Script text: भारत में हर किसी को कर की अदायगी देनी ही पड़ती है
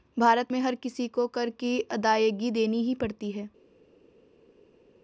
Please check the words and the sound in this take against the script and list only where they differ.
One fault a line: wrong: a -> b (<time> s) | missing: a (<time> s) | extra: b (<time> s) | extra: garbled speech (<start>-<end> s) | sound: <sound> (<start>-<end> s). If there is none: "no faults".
no faults